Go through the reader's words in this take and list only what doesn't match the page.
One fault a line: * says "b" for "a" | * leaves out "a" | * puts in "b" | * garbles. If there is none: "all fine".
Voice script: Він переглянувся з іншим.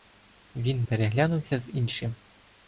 all fine